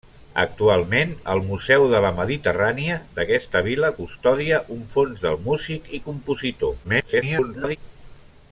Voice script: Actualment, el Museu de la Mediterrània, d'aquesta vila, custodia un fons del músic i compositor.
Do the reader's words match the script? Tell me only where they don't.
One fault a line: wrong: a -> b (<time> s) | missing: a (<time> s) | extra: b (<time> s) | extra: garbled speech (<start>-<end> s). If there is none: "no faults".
extra: garbled speech (6.8-7.8 s)